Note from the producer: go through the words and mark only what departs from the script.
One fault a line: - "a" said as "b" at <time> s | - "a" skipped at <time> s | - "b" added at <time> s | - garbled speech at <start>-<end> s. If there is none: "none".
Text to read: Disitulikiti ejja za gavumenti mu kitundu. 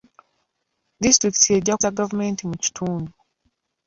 none